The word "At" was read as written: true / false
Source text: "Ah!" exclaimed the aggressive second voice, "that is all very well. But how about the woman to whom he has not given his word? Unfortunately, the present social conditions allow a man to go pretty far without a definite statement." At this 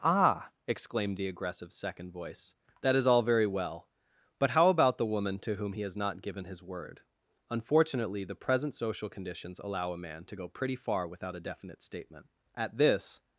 true